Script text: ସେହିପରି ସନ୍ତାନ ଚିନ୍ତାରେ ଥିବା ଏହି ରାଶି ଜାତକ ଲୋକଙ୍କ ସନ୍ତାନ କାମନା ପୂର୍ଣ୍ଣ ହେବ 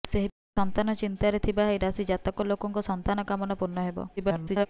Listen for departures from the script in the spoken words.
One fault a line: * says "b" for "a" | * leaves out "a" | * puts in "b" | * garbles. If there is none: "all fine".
* garbles